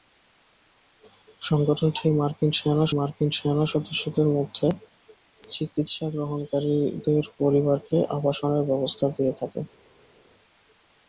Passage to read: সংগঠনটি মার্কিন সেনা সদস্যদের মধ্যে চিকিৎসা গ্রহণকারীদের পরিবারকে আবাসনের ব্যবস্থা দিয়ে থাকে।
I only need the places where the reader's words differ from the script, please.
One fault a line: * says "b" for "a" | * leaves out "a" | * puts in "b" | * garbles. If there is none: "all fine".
* puts in "মার্কিন সেনা"